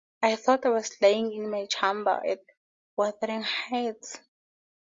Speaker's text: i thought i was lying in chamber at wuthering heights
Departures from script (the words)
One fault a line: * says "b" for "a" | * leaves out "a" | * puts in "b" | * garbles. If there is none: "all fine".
* puts in "my"